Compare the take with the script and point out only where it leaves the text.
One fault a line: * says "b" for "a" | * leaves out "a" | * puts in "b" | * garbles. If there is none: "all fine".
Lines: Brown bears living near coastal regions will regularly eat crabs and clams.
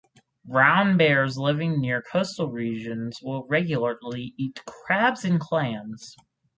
all fine